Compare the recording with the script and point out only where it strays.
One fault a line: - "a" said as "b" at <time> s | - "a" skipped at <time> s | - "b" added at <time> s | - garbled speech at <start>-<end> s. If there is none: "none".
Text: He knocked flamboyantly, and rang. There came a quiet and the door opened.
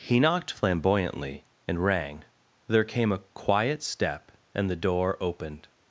- "step" added at 3.8 s